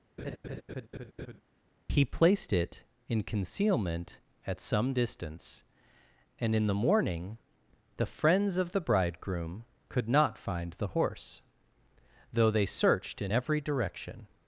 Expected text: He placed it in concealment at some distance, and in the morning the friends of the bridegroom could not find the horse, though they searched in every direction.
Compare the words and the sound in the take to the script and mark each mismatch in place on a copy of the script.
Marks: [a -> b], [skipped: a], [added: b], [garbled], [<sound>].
[laugh] He placed it in concealment at some distance, and in the morning the friends of the bridegroom could not find the horse, though they searched in every direction.